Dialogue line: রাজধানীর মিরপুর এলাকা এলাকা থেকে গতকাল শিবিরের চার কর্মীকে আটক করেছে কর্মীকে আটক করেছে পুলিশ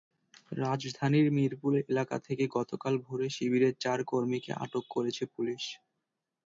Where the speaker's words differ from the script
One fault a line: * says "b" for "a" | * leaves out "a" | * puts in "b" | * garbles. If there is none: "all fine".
* leaves out "এলাকা"
* puts in "ভোরে"
* leaves out "কর্মীকে আটক করেছে"